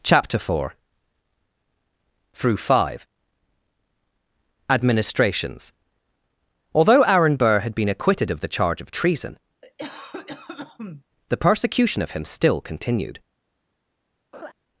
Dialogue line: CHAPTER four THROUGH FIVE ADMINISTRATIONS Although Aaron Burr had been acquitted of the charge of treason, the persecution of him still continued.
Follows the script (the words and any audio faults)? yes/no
no